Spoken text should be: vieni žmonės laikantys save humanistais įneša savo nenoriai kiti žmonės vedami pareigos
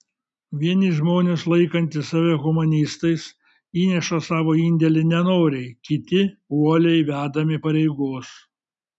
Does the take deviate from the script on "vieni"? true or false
false